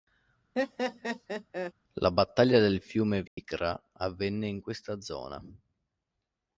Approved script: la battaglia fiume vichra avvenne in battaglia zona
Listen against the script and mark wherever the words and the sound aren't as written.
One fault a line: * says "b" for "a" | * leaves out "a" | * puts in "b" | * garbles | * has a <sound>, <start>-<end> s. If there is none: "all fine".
* has a laugh, 0.6-1.7 s
* puts in "del"
* has a dropout, 3.3-3.4 s
* says "questa" for "battaglia"